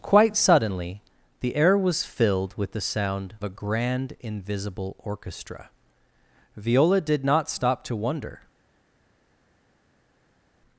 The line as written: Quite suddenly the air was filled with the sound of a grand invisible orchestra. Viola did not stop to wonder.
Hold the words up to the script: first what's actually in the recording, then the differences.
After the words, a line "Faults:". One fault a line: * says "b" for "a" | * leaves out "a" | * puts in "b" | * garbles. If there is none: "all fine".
Quite suddenly the air was filled with the sound a grand invisible orchestra. Viola did not stop to wonder.
Faults:
* leaves out "of"